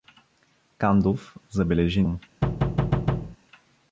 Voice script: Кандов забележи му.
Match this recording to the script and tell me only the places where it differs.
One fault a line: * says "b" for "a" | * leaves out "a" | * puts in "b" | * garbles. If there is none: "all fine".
all fine